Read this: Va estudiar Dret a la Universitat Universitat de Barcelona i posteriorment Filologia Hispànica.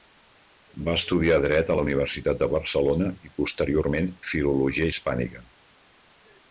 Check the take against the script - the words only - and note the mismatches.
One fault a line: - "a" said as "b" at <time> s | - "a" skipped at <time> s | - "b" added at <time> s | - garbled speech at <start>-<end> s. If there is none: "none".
- "Universitat" skipped at 2.4 s